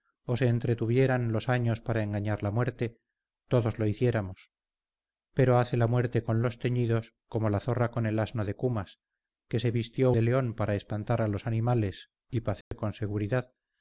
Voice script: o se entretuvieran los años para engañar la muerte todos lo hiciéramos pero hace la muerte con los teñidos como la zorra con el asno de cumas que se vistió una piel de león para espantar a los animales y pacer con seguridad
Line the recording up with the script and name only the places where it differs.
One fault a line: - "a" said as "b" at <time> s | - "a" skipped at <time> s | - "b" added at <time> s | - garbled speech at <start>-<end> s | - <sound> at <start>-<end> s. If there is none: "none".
- "una piel" skipped at 10.1 s
- dropout at 12.6-12.7 s